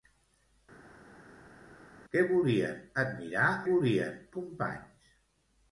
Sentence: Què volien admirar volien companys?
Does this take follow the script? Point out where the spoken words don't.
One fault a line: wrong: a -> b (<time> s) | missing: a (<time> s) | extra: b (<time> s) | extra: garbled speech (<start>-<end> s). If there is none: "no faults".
no faults